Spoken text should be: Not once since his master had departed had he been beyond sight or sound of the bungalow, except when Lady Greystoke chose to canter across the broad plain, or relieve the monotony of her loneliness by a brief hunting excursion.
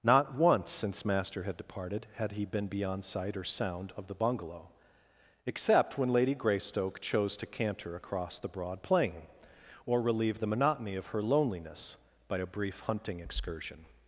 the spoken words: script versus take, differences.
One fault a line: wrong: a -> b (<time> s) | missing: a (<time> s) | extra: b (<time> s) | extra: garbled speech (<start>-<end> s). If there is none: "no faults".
missing: his (1.0 s)